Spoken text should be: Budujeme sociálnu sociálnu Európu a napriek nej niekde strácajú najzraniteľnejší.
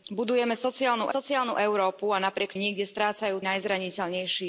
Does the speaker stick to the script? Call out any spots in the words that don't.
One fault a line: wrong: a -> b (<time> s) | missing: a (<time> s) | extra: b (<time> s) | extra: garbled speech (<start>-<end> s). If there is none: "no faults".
no faults